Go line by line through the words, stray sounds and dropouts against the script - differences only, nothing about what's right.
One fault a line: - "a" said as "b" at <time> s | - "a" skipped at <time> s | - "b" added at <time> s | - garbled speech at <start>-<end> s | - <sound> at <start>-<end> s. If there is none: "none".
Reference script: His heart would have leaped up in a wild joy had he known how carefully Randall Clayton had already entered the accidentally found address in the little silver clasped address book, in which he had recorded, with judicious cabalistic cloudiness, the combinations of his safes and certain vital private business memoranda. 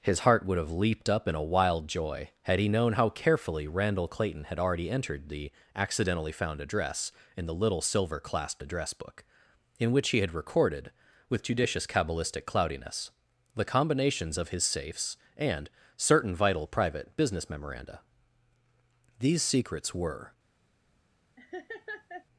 - "These secrets were" added at 19.2 s
- laugh at 21.4-22.3 s